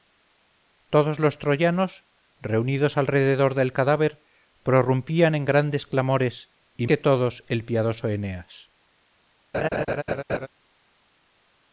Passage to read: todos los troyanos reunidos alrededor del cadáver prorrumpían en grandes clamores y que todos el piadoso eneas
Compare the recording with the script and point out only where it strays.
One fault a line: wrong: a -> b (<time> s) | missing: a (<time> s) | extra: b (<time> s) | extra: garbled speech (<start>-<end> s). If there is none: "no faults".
no faults